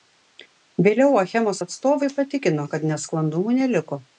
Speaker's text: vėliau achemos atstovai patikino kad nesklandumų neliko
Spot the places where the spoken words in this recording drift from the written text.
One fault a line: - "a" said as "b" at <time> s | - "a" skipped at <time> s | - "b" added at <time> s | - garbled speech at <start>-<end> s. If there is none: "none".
none